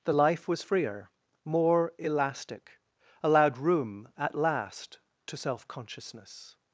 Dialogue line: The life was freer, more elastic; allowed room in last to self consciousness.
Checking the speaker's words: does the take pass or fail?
fail